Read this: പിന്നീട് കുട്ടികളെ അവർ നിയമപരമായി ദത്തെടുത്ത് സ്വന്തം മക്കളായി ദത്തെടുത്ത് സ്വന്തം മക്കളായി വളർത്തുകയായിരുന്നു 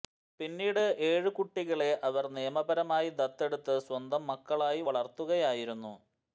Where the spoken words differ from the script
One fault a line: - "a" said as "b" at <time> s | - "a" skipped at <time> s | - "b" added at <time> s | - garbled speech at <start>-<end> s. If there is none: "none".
- "ഏഴു" added at 1.1 s
- "ദത്തെടുത്ത് സ്വന്തം മക്കളായി" skipped at 4.8 s